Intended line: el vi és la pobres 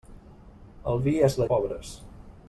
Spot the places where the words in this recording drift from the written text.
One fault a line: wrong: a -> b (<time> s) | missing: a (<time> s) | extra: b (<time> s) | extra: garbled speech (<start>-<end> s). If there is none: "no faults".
no faults